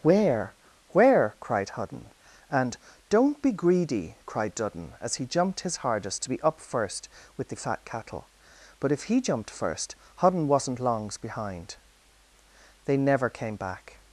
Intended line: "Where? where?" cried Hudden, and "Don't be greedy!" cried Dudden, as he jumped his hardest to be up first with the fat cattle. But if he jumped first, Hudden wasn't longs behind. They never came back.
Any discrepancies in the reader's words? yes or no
no